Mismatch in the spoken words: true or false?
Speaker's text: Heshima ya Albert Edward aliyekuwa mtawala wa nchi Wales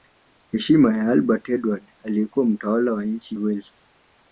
false